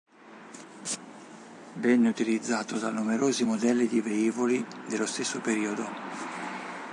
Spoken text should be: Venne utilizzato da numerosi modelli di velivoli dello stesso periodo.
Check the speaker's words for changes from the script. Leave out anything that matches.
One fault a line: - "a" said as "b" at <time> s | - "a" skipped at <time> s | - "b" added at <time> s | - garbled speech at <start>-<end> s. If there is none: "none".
none